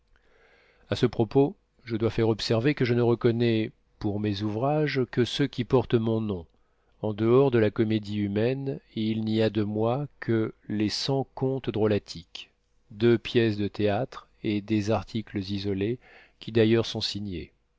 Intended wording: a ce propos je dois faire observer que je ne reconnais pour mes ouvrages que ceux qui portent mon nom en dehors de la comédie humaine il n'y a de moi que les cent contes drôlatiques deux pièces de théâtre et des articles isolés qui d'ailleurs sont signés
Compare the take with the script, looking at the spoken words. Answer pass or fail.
pass